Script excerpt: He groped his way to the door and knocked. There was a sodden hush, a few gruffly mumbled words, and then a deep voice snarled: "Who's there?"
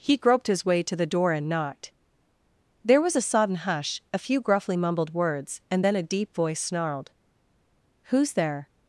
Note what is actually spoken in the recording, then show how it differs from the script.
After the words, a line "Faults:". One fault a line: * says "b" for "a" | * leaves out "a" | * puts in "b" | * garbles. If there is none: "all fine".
He groped his way to the door and knocked. There was a sodden hush, a few gruffly mumbled words, and then a deep voice snarled: "Who's there?"
Faults:
all fine